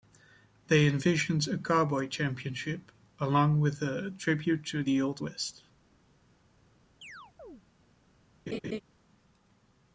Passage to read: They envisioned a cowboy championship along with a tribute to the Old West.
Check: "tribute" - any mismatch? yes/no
no